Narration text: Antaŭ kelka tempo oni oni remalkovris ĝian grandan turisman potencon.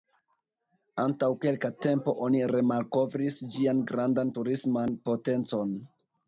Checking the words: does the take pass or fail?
fail